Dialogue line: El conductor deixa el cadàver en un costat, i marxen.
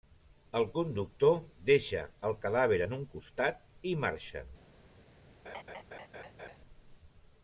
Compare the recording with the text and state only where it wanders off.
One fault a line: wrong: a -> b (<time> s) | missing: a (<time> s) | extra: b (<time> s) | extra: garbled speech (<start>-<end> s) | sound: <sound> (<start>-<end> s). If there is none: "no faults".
sound: laugh (5.4-6.6 s)